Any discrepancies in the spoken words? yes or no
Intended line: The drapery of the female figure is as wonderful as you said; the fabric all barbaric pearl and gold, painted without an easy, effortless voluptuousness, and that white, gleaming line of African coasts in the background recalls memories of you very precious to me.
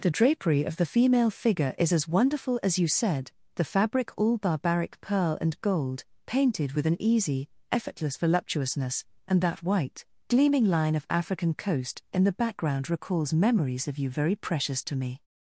yes